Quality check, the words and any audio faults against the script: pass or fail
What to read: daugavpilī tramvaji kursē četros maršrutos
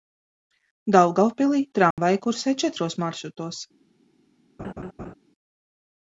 fail